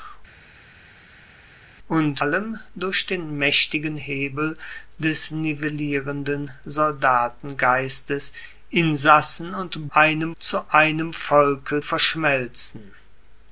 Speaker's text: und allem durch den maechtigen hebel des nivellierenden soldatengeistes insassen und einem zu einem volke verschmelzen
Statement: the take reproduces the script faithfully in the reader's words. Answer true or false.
true